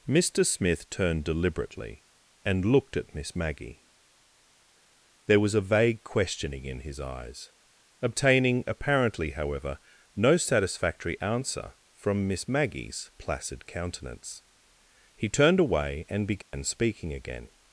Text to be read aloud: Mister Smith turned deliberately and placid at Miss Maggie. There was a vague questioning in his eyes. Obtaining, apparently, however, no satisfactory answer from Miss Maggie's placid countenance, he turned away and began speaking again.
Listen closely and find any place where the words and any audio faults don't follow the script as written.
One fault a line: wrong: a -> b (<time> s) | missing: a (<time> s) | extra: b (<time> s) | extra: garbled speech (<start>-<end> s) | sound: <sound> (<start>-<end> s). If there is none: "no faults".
wrong: placid -> looked (2.6 s)
sound: dropout (16.4-16.5 s)